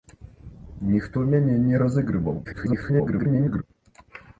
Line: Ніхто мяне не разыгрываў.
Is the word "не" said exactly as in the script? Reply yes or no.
yes